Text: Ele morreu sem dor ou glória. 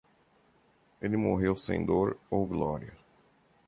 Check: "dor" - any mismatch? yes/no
no